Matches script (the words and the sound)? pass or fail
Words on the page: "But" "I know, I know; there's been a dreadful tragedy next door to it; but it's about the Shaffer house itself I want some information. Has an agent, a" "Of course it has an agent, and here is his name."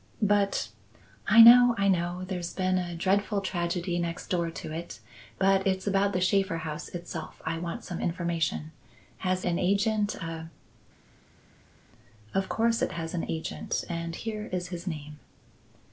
pass